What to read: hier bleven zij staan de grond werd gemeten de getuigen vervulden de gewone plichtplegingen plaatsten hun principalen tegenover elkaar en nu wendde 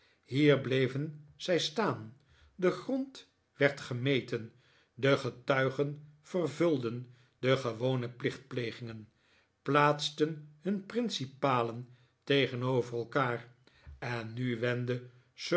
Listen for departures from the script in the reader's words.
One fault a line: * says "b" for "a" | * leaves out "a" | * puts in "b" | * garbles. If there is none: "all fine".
all fine